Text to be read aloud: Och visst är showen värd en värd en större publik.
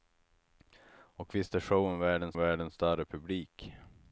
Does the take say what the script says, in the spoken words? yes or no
yes